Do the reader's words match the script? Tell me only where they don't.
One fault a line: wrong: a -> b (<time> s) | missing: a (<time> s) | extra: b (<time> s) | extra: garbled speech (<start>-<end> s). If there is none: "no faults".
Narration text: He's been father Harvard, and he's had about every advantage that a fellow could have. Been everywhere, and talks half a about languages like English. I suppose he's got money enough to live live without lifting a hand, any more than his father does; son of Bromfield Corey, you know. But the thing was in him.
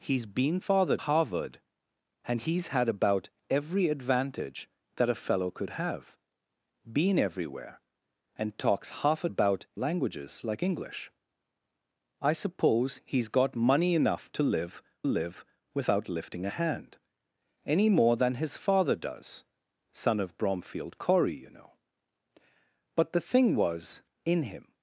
no faults